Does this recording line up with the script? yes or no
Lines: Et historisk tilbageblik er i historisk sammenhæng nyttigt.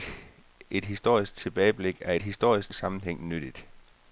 yes